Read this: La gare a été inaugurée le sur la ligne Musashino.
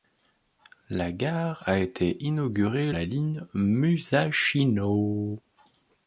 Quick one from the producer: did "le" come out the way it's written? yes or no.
no